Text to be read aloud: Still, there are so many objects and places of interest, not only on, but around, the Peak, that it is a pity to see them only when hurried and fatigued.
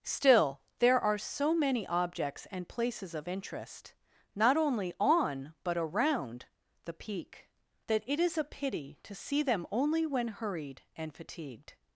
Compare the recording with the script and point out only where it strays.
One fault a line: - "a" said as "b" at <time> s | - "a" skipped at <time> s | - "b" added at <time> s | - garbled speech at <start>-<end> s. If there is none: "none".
none